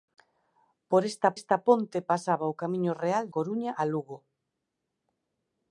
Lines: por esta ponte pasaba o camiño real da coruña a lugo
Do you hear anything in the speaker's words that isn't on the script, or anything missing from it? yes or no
yes